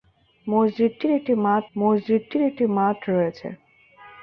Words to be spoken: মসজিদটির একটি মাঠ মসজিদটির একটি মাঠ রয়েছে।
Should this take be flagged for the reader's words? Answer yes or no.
no